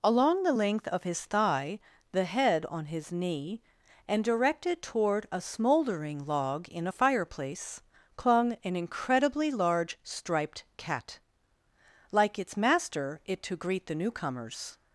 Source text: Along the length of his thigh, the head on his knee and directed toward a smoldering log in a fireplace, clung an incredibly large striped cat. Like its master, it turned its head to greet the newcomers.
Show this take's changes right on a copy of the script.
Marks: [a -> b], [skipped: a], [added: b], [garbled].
Along the length of his thigh, the head on his knee and directed toward a smoldering log in a fireplace, clung an incredibly large striped cat. Like its master, it [skipped: turned its head] to greet the newcomers.